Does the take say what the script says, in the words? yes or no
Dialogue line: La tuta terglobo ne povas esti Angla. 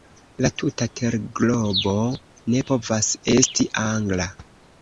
yes